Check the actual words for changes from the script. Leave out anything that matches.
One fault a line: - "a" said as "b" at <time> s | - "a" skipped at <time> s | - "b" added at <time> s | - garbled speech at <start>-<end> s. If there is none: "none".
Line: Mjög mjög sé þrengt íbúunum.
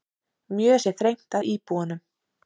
- "mjög" skipped at 0.8 s
- "að" added at 1.4 s